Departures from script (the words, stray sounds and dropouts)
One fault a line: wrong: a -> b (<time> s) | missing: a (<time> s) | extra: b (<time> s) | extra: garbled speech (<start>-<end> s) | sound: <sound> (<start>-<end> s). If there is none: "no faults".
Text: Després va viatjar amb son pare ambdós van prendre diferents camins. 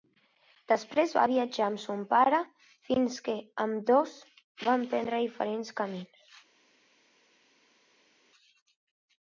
extra: fins que (2.9 s)